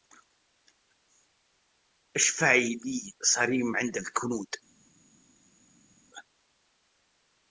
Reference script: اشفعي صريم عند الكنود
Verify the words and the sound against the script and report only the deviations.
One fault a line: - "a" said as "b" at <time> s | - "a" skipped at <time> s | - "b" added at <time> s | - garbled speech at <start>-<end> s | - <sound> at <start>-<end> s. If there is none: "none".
- "لي" added at 2.9 s